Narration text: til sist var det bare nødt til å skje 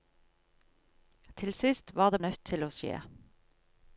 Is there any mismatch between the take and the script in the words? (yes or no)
yes